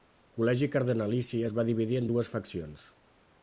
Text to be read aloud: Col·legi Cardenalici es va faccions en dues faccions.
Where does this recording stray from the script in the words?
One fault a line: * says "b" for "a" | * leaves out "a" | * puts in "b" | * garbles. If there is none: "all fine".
* says "dividir" for "faccions"